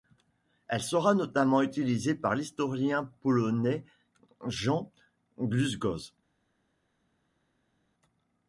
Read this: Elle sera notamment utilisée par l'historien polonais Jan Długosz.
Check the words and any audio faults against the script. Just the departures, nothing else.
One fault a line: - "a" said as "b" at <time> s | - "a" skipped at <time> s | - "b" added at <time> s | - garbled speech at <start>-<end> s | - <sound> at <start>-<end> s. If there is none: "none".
none